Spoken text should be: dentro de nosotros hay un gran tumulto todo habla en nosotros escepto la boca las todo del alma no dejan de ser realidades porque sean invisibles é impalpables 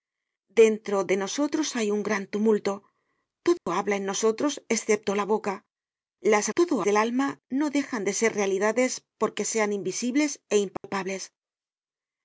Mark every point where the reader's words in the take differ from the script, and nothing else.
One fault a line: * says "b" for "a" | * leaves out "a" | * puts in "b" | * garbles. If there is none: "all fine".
all fine